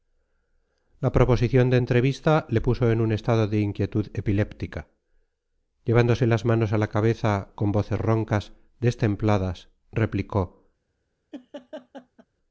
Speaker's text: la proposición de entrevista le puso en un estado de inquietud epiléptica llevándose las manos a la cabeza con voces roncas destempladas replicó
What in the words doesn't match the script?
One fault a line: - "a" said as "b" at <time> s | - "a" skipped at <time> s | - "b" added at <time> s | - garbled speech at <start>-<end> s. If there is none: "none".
none